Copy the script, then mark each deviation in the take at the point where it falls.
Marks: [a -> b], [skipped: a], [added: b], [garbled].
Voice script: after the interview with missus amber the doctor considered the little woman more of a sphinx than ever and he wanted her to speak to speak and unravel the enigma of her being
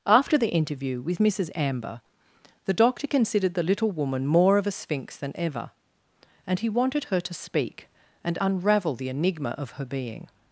after the interview with missus amber the doctor considered the little woman more of a sphinx than ever and he wanted her to speak [skipped: to speak] and unravel the enigma of her being